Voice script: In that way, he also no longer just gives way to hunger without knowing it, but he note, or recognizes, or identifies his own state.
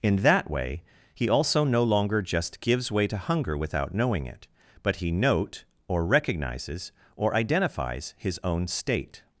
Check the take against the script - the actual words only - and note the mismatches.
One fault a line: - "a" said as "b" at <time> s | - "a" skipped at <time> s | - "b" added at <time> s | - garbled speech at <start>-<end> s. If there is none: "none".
none